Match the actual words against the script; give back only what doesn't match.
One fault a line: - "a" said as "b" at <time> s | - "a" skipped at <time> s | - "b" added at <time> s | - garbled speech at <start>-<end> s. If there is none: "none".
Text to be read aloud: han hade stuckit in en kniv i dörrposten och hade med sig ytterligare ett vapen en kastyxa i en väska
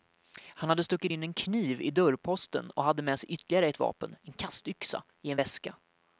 none